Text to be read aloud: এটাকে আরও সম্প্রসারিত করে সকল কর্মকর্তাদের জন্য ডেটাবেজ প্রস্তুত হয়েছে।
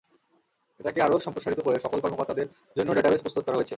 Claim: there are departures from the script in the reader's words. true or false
true